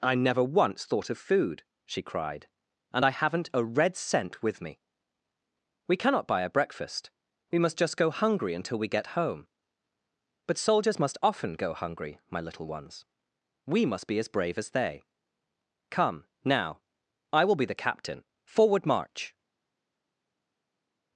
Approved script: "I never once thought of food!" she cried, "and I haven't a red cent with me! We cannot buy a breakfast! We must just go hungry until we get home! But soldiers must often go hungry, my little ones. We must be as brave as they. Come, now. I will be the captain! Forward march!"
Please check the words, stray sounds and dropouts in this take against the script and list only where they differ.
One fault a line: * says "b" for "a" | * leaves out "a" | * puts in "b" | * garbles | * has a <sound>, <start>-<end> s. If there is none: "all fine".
all fine